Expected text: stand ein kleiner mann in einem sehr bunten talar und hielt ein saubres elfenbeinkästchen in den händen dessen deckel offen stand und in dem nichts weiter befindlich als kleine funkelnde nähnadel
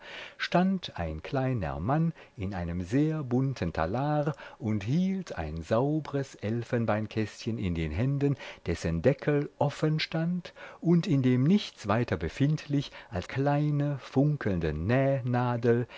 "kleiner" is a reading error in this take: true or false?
false